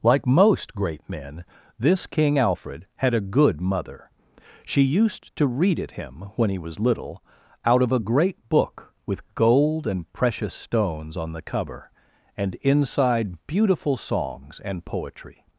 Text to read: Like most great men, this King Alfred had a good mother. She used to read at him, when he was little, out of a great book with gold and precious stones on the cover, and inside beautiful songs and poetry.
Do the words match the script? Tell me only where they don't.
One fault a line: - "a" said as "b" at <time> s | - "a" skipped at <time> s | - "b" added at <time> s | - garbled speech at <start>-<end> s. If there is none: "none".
none